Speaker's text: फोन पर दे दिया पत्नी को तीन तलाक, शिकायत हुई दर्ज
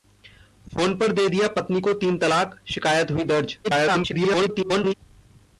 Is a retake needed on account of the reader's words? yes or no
yes